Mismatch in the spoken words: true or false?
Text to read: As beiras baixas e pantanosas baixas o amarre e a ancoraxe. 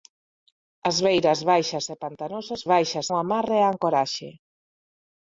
false